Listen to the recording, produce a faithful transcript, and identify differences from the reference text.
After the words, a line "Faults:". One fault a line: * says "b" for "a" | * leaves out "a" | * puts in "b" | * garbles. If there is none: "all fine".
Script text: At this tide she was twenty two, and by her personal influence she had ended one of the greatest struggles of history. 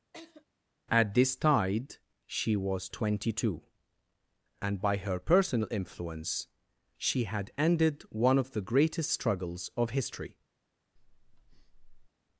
At this tide she was twenty two, and by her personal influence she had ended one of the greatest struggles of history.
Faults:
all fine